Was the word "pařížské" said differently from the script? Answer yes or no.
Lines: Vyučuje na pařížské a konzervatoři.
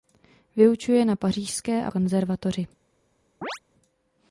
no